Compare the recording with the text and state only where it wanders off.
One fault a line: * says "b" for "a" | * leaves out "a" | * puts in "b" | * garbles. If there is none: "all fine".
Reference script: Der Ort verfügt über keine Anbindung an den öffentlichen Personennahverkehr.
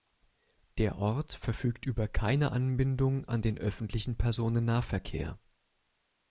all fine